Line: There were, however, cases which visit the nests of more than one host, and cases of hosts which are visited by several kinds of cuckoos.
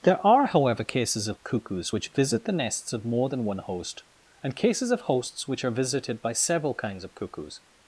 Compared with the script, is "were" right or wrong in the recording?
wrong